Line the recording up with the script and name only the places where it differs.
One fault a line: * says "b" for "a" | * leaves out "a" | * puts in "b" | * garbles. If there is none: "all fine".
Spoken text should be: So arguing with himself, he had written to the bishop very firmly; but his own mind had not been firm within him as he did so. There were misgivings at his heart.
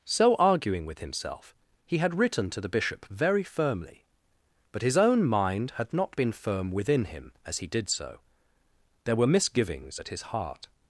all fine